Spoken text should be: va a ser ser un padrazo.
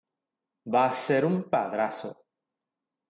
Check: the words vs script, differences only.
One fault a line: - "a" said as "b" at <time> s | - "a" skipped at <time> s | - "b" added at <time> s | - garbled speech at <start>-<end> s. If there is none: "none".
- "ser" skipped at 1.2 s